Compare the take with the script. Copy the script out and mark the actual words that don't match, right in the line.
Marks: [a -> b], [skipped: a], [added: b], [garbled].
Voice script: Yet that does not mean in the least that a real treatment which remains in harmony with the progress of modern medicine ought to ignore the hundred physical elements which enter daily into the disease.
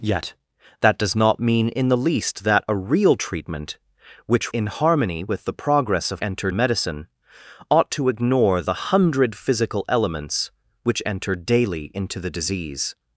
Yet that does not mean in the least that a real treatment which [skipped: remains] in harmony with the progress of [modern -> enter] medicine ought to ignore the hundred physical elements which enter daily into the disease.